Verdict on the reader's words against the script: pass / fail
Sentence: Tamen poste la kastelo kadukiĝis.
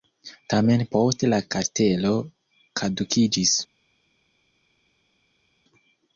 pass